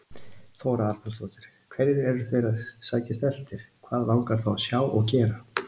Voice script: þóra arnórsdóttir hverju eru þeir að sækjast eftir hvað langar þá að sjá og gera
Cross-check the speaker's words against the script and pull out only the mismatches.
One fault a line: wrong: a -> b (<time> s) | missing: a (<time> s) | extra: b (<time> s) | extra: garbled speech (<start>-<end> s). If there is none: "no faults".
no faults